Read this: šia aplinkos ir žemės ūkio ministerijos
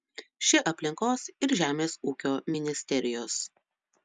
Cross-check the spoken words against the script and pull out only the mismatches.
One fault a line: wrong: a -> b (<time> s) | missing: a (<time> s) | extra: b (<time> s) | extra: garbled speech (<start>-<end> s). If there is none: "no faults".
no faults